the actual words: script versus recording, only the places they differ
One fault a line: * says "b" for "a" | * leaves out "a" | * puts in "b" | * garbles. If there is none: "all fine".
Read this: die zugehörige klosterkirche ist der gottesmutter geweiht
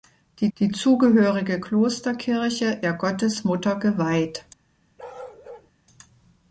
* puts in "die"
* leaves out "ist"